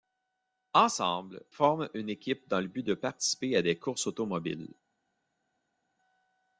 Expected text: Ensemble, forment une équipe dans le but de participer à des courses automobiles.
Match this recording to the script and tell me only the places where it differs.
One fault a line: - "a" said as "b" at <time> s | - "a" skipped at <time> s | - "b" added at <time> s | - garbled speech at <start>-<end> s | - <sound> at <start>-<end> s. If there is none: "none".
none